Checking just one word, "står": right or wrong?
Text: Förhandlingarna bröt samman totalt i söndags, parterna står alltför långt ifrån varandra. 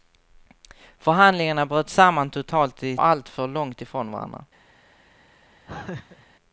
wrong